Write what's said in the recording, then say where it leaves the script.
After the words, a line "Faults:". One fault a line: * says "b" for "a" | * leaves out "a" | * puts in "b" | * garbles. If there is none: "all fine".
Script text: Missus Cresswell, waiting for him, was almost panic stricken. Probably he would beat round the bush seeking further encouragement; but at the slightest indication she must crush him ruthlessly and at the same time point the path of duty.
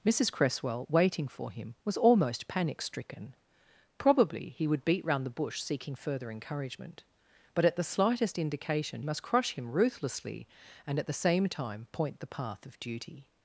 Missus Cresswell, waiting for him, was almost panic stricken. Probably he would beat round the bush seeking further encouragement; but at the slightest indication must crush him ruthlessly and at the same time point the path of duty.
Faults:
* leaves out "she"